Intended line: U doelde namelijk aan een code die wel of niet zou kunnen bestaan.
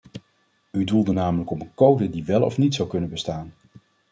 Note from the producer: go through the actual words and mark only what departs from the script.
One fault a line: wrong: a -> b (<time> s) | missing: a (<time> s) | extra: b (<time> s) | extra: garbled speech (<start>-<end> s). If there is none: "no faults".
wrong: aan -> op (1.5 s)